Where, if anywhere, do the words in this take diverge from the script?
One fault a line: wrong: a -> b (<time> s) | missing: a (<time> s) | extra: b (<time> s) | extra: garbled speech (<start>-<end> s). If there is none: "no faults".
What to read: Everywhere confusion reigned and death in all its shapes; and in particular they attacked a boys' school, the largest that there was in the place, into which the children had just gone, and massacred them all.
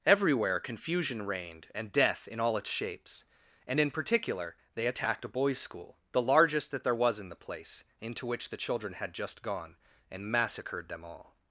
no faults